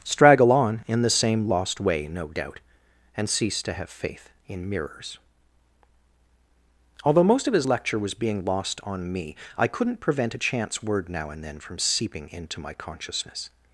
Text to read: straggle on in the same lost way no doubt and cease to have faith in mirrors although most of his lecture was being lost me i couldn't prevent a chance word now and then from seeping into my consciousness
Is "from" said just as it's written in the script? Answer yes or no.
yes